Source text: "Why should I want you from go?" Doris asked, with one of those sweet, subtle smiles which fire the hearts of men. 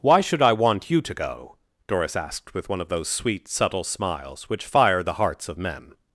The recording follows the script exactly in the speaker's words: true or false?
false